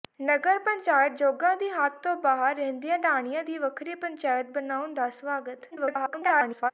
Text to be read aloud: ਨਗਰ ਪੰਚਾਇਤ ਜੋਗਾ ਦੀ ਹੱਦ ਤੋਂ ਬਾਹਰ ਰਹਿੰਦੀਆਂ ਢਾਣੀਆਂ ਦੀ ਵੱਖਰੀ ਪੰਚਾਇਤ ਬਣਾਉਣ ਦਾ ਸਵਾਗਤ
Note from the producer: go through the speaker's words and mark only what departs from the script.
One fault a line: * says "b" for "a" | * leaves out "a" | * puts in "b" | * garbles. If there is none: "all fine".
* garbles